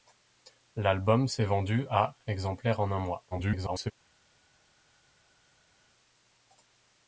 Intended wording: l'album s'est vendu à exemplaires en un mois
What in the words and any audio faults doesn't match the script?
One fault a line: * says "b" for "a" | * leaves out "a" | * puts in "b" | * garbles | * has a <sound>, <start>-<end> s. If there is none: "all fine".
* garbles